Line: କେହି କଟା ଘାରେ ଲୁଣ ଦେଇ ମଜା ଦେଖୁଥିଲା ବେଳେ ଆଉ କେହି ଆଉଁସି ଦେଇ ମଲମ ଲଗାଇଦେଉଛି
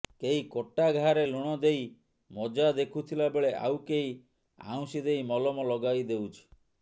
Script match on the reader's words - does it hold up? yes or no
yes